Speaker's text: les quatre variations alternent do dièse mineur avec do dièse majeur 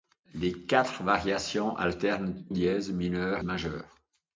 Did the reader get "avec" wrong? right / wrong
wrong